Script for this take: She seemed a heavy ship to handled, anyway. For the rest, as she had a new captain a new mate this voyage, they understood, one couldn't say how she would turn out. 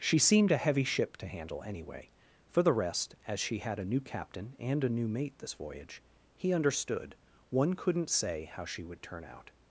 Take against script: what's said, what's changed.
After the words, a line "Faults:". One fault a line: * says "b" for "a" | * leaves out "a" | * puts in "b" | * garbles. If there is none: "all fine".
She seemed a heavy ship to handle, anyway. For the rest, as she had a new captain and a new mate this voyage, he understood, one couldn't say how she would turn out.
Faults:
* says "handle" for "handled"
* puts in "and"
* says "he" for "they"